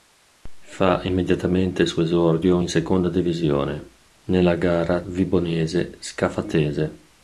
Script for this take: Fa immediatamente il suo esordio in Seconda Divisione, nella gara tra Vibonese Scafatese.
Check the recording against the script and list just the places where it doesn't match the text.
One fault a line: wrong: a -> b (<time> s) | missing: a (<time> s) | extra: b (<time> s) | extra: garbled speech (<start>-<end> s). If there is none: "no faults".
missing: tra (5.0 s)